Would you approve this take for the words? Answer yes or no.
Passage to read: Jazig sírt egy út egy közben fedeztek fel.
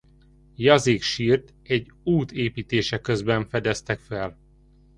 no